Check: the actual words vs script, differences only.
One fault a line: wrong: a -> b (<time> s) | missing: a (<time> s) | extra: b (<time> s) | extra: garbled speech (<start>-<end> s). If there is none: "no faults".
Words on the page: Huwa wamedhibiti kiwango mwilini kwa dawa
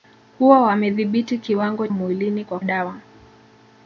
no faults